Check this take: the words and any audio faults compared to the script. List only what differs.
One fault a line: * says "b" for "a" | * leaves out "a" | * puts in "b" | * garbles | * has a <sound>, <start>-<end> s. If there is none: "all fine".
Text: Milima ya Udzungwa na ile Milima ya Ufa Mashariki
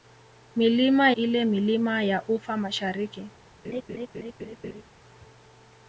* leaves out "ya Udzungwa na"
* has a laugh, 3.6-4.8 s